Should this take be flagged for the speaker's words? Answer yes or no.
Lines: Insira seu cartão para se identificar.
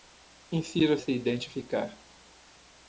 yes